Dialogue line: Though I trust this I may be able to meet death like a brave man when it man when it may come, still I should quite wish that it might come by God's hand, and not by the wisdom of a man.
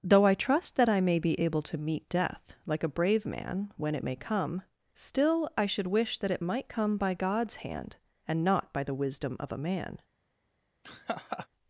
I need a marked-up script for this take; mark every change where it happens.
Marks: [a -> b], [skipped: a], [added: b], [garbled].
Though I trust [this -> that] I may be able to meet death like a brave man when it [skipped: man when it] may come, still I should [skipped: quite] wish that it might come by God's hand, and not by the wisdom of a man.